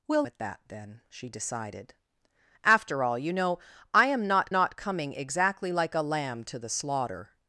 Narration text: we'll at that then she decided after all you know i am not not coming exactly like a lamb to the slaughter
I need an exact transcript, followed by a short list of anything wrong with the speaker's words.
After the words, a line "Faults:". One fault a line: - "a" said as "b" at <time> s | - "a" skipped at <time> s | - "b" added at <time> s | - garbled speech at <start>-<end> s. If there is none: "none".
we'll at that then she decided after all you know i am not not coming exactly like a lamb to the slaughter
Faults:
none